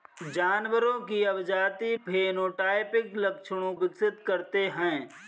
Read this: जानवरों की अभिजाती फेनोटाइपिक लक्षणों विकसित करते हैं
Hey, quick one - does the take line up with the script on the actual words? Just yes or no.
yes